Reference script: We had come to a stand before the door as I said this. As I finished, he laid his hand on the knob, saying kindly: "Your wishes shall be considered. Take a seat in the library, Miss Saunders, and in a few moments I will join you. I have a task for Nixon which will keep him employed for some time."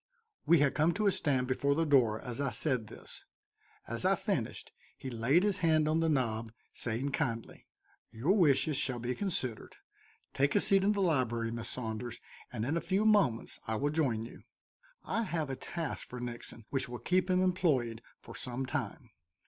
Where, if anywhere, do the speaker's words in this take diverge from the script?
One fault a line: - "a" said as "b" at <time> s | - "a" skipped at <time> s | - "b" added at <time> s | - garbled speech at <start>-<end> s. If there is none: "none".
none